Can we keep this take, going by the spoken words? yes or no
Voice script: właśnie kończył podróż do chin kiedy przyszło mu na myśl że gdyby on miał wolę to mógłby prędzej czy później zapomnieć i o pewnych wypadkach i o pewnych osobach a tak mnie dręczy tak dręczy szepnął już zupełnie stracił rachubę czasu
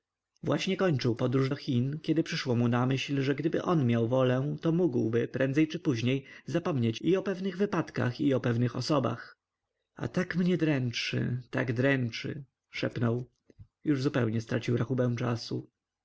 yes